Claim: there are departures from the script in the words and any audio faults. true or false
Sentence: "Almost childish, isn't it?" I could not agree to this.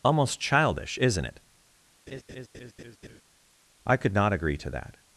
true